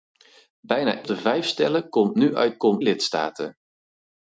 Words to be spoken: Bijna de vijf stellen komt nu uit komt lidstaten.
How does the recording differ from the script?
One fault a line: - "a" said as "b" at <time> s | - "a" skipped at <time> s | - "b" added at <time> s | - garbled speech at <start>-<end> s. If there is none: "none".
none